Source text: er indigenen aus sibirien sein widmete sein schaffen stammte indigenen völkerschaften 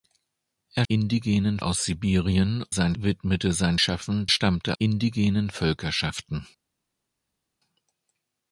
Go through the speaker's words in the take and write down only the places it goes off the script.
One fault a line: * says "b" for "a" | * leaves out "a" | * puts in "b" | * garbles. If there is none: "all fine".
all fine